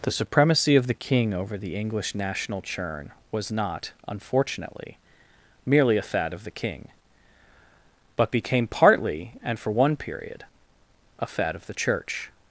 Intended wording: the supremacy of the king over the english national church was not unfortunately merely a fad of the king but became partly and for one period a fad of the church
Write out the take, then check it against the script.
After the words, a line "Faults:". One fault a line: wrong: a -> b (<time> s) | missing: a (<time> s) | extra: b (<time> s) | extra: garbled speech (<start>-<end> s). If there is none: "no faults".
the supremacy of the king over the english national churn was not unfortunately merely a fad of the king but became partly and for one period a fad of the church
Faults:
wrong: church -> churn (2.6 s)